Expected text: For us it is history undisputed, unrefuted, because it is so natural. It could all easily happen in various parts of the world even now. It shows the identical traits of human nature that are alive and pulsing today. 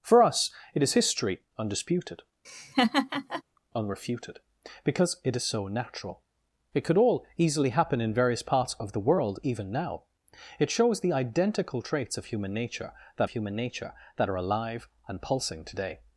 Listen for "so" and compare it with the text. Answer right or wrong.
right